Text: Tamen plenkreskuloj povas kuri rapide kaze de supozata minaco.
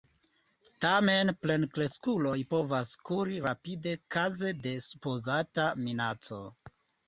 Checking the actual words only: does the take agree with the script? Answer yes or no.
yes